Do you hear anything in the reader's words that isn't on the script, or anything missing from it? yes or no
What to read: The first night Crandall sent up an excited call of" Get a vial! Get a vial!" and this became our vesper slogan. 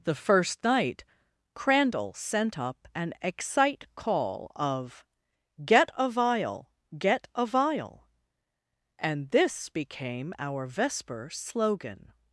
yes